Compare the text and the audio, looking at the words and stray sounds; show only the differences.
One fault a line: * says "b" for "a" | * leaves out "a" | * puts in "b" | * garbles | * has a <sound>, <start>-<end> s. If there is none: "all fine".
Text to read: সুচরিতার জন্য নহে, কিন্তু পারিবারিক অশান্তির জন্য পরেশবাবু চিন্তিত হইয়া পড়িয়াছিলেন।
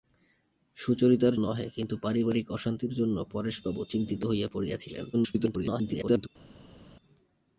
* leaves out "জন্য"
* garbles